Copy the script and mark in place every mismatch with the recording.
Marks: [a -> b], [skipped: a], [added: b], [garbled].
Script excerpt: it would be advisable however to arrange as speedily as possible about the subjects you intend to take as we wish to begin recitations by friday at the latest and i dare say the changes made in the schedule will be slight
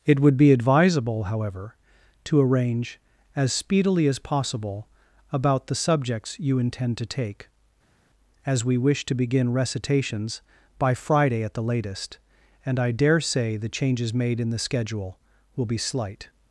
it would be advisable however to arrange as speedily as possible about the subjects you intend to take as we wish to begin recitations by friday at the latest and i dare say the changes made in the schedule will be slight